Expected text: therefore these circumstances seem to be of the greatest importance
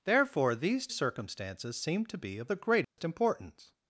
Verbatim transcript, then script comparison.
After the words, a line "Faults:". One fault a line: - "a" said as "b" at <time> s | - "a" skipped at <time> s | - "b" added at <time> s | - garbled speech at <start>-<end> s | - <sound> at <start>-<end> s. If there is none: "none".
therefore these circumstances seem to be of the greatest importance
Faults:
- dropout at 2.8-3.0 s